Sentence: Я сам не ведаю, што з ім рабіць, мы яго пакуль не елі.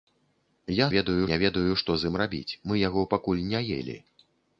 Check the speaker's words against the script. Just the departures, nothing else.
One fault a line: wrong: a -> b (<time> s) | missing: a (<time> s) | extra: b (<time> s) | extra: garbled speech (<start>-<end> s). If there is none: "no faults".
wrong: сам -> ведаю (0.9 s)